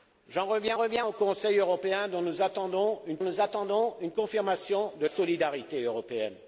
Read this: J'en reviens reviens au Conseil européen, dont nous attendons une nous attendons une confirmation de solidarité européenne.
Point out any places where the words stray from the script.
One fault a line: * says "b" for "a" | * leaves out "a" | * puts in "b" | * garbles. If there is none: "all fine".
all fine